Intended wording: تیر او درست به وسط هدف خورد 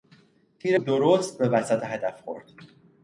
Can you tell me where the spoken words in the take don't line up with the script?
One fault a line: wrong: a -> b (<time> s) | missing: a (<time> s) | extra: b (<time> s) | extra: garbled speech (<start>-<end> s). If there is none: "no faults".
missing: او (0.8 s)